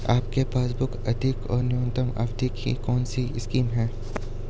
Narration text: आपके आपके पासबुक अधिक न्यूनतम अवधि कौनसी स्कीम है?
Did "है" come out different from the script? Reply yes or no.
no